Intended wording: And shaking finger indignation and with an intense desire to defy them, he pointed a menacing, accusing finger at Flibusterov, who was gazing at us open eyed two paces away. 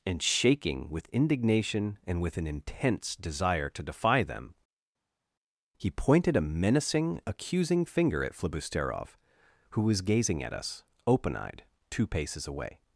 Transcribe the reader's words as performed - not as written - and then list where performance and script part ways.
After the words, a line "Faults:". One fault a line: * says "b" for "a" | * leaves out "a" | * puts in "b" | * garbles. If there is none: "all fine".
And shaking with indignation and with an intense desire to defy them, he pointed a menacing, accusing finger at Flibusterov, who was gazing at us open eyed two paces away.
Faults:
* says "with" for "finger"